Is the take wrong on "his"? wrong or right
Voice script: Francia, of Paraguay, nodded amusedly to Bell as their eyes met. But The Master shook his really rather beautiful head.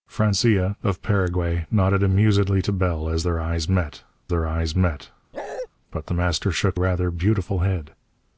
wrong